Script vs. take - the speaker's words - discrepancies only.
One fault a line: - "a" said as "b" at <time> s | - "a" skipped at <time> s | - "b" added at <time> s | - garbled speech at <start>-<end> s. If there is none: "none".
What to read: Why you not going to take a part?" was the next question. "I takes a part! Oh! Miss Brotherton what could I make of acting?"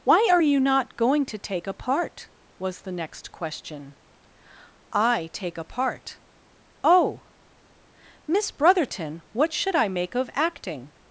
- "are" added at 0.3 s
- "takes" said as "take" at 5.3 s
- "could" said as "should" at 9.5 s